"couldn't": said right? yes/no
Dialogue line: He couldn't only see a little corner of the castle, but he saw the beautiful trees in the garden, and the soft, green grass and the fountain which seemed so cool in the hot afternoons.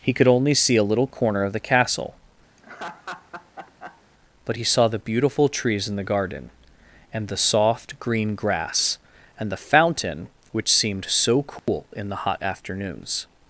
no